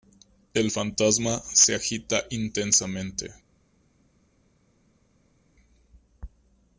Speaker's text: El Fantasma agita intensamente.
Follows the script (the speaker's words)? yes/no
no